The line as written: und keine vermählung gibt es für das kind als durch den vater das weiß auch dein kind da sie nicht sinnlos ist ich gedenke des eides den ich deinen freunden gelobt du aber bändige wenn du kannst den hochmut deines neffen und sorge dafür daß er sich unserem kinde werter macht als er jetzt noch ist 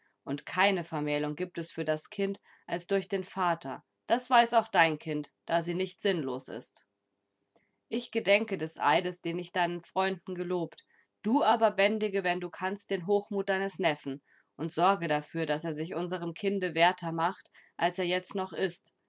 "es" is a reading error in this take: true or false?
false